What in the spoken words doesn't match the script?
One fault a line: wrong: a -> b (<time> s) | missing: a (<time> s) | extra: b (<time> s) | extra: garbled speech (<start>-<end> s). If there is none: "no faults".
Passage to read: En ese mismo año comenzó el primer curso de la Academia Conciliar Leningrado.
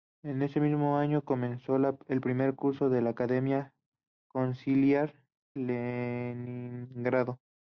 no faults